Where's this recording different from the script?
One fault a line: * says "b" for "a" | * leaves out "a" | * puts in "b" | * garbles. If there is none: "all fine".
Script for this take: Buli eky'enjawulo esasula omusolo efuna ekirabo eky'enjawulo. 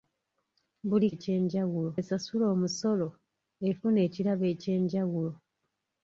all fine